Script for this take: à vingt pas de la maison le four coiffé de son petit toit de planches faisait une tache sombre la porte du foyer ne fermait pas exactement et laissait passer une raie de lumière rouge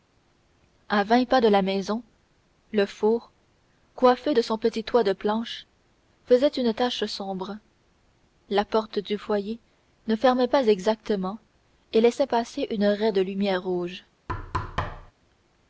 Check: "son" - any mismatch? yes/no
no